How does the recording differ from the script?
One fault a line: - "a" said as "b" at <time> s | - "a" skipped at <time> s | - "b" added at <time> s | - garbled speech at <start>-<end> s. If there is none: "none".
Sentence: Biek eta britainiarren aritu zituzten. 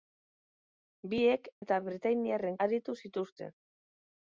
none